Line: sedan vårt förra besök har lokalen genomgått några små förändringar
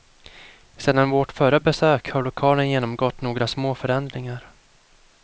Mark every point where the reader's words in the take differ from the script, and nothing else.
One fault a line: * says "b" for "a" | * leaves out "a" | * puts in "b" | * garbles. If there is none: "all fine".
all fine